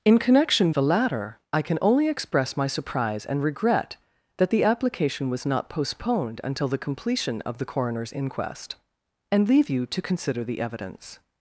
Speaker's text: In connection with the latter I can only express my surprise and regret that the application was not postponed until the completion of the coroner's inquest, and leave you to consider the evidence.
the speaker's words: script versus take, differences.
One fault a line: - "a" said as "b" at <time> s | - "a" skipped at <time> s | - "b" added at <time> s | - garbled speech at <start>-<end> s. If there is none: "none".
- "with" skipped at 0.7 s